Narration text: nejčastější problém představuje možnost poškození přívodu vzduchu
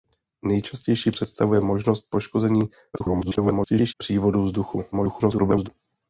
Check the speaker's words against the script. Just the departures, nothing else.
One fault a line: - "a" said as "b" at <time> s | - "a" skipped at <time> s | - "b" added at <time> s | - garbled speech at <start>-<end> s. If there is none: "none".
- "problém" skipped at 1.1 s
- garbled speech at 2.9-3.9 s
- garbled speech at 4.9-5.7 s